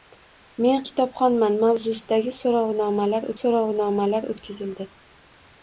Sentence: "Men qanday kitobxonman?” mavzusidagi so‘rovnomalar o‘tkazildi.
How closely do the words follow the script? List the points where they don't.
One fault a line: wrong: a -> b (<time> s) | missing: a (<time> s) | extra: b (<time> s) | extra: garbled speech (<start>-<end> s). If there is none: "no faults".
missing: qanday (0.8 s)
extra: so‘rovnomalar (3.4 s)